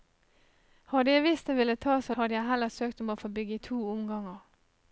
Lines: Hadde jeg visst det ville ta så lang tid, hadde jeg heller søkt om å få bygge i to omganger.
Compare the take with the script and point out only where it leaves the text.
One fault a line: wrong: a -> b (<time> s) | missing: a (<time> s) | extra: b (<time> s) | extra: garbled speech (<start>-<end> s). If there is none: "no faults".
missing: lang tid (2.1 s)